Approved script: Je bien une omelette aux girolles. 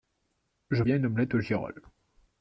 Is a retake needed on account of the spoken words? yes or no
no